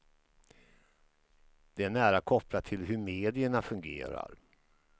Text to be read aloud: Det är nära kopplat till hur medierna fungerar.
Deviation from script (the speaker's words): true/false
false